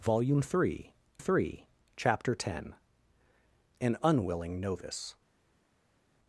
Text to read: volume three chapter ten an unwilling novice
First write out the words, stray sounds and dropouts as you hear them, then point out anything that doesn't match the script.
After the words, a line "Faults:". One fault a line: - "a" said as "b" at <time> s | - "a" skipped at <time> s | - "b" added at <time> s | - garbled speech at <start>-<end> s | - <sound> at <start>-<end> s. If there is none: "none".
volume three three chapter ten an unwilling novice
Faults:
- "three" added at 1.2 s